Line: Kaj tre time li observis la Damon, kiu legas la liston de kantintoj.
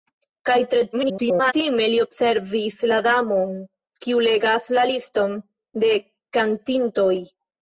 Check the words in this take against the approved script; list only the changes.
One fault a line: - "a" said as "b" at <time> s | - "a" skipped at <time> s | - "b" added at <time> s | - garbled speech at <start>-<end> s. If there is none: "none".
- garbled speech at 0.9-1.5 s